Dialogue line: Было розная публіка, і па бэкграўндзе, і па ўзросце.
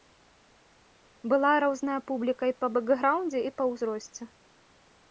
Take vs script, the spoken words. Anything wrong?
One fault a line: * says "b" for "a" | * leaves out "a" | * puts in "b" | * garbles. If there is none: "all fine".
* says "Была" for "Было"